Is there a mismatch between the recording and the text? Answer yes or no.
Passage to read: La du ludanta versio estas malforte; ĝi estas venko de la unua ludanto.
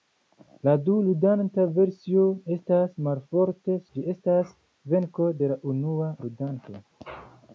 no